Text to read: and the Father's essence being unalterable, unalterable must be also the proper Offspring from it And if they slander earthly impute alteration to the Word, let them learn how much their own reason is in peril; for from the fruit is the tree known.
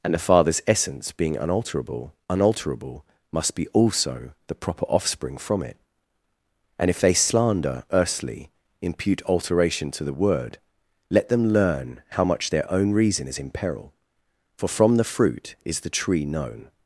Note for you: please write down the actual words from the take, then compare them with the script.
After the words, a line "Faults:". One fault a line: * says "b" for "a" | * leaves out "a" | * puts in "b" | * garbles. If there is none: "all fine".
and the Father's essence being unalterable, unalterable must be also the proper Offspring from it And if they slander earthly impute alteration to the Word, let them learn how much their own reason is in peril; for from the fruit is the tree known.
Faults:
all fine